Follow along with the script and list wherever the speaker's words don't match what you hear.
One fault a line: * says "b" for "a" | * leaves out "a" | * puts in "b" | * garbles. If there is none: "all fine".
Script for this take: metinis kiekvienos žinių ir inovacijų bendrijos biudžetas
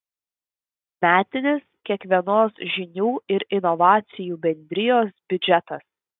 all fine